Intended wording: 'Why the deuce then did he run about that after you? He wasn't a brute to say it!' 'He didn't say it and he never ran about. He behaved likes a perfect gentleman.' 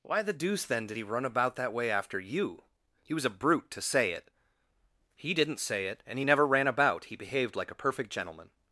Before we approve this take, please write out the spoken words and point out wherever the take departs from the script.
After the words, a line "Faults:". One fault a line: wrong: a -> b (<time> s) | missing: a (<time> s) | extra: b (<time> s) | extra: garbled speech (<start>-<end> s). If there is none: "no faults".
'Why the deuce then did he run about that way after you? He was a brute to say it!' 'He didn't say it and he never ran about. He behaved like a perfect gentleman.'
Faults:
extra: way (1.7 s)
wrong: wasn't -> was (3.1 s)
wrong: likes -> like (7.6 s)